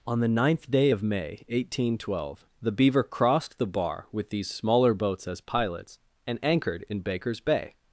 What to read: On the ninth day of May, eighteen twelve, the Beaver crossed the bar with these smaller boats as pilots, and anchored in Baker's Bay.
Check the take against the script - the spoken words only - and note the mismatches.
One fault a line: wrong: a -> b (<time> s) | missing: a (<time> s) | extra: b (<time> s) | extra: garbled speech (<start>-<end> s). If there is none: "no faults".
no faults